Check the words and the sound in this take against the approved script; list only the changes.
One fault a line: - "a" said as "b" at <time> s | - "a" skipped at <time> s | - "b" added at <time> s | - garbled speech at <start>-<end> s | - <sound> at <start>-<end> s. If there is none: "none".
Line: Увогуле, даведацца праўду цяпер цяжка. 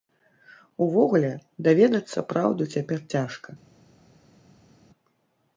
none